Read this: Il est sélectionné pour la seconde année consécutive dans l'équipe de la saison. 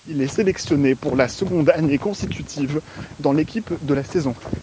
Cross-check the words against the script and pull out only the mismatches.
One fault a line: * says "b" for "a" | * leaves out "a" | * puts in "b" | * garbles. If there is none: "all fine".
all fine